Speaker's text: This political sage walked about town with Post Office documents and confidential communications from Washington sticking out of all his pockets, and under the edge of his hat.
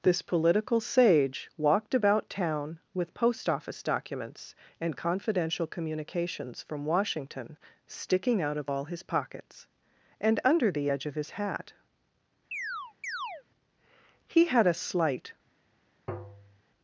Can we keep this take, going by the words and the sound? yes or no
no